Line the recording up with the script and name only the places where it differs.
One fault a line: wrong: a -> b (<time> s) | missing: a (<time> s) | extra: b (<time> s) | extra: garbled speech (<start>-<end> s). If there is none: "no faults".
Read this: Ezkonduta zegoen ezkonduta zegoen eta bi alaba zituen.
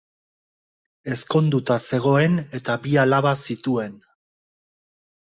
missing: ezkonduta zegoen (2.4 s)